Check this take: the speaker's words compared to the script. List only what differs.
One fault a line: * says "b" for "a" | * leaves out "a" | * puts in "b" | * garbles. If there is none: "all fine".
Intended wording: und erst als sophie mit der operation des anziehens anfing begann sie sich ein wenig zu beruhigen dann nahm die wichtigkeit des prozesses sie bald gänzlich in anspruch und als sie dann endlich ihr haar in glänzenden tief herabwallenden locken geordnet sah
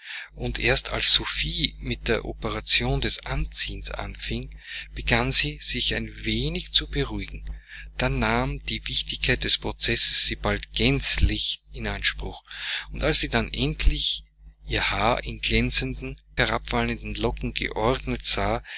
* leaves out "tief"